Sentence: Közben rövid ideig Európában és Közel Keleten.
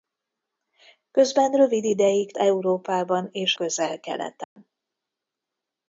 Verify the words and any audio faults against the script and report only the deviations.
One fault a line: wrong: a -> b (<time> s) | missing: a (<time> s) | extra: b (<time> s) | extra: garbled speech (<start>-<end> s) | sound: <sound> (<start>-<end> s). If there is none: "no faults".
sound: dropout (4.4-4.6 s)